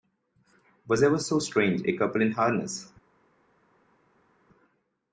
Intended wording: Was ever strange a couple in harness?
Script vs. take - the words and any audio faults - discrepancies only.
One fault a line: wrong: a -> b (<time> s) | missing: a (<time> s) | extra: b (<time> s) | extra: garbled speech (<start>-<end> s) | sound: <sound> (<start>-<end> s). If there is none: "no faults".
extra: so (1.2 s)